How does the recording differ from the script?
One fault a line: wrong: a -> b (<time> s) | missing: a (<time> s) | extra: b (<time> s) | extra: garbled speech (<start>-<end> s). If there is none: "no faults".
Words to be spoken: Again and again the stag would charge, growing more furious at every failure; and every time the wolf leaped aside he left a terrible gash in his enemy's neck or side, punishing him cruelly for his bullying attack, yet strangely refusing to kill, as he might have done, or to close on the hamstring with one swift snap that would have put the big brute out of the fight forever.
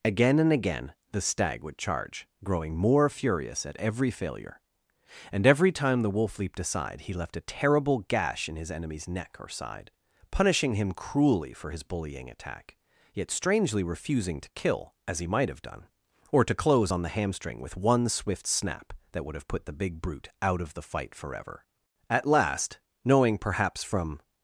extra: At last knowing perhaps from (22.1 s)